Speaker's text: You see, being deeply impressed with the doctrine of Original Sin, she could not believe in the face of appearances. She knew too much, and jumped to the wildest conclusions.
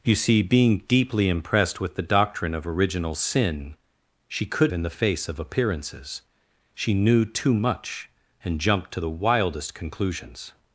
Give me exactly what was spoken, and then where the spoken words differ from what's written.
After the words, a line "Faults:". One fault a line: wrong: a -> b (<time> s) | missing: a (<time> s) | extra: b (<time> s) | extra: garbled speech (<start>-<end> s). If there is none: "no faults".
You see, being deeply impressed with the doctrine of Original Sin, she could in the face of appearances. She knew too much, and jumped to the wildest conclusions.
Faults:
missing: not believe (4.7 s)